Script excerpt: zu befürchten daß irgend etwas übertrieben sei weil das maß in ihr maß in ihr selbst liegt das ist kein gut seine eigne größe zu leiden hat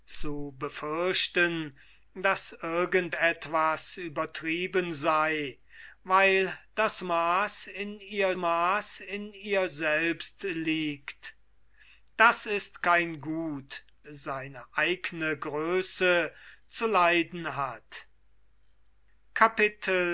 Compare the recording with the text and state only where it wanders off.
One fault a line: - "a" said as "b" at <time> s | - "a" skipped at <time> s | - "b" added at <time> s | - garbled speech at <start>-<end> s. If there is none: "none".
none